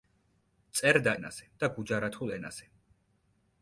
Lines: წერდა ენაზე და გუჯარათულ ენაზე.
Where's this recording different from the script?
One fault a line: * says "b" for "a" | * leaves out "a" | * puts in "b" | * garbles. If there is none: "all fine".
all fine